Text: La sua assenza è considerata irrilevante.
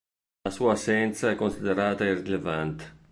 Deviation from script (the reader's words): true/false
false